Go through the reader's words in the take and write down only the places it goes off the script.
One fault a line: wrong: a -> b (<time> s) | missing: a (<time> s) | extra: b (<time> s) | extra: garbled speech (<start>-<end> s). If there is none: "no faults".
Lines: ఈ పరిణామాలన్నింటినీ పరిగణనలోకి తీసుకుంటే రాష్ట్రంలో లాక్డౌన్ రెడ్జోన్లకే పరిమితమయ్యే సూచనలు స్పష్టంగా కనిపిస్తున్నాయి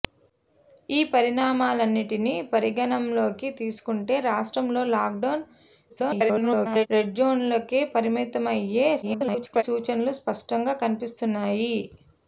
extra: garbled speech (5.9-6.9 s)
extra: garbled speech (9.0-9.6 s)